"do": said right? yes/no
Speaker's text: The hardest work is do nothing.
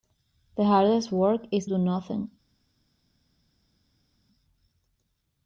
yes